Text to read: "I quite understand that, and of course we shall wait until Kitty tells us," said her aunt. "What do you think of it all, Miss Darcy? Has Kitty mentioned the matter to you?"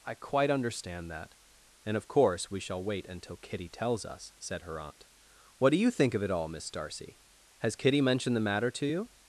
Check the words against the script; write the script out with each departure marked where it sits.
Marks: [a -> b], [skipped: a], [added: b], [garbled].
"I quite understand that, and of course we shall wait until Kitty tells us," said her aunt. "What do you think of it all, Miss Darcy? Has Kitty mentioned the matter to you?"